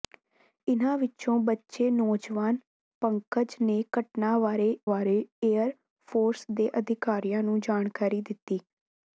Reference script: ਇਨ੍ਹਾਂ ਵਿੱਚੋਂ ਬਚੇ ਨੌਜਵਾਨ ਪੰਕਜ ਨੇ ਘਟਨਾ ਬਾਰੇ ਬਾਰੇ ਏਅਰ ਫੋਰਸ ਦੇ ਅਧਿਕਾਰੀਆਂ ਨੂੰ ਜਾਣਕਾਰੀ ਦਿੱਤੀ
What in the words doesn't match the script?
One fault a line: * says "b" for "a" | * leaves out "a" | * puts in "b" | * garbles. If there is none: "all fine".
all fine